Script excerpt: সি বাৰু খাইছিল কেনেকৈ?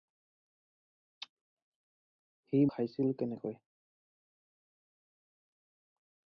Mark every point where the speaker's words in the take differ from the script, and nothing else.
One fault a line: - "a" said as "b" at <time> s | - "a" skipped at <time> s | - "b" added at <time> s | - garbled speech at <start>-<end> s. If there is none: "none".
- "বাৰু" skipped at 2.6 s